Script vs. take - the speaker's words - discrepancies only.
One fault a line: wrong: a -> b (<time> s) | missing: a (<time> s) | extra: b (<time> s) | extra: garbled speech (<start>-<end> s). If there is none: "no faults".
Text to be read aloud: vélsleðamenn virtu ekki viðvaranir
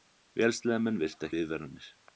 missing: ekki (1.3 s)